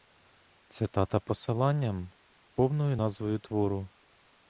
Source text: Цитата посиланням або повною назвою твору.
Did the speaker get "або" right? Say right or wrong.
wrong